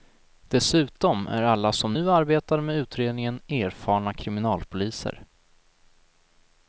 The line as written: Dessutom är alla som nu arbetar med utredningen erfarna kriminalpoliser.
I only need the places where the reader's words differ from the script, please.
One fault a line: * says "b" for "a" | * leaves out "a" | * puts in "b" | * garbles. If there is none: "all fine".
all fine